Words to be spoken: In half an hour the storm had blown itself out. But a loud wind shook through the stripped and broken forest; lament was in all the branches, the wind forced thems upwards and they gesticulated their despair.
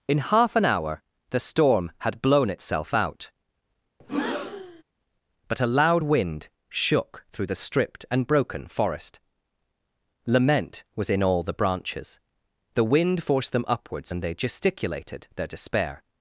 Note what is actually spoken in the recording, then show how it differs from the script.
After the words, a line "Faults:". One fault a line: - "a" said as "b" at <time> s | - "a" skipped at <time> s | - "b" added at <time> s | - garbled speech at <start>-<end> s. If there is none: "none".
In half an hour the storm had blown itself out. But a loud wind shook through the stripped and broken forest; lament was in all the branches, the wind forced them upwards and they gesticulated their despair.
Faults:
- "thems" said as "them" at 13.5 s